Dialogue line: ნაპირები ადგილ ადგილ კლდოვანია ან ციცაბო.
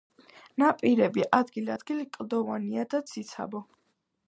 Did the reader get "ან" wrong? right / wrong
wrong